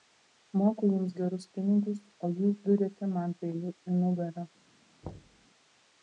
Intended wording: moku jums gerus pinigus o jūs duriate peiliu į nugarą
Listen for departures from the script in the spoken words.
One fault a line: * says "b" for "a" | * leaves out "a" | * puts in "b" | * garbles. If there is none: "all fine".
* puts in "man"